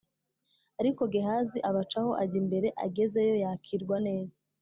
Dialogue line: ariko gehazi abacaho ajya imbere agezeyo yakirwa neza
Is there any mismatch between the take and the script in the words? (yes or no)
no